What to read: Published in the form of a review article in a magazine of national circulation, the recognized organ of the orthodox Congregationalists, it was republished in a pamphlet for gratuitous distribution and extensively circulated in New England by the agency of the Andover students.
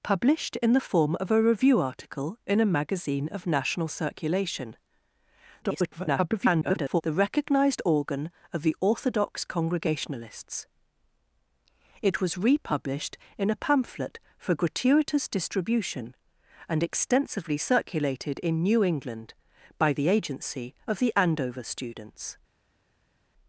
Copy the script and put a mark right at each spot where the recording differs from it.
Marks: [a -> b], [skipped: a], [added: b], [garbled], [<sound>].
Published in the form of a review article in a magazine of national circulation, [garbled] the recognized organ of the orthodox Congregationalists, it was republished in a pamphlet for gratuitous distribution and extensively circulated in New England by the agency of the Andover students.